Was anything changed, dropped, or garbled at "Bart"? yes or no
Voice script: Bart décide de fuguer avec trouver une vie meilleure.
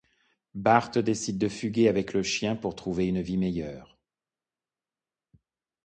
no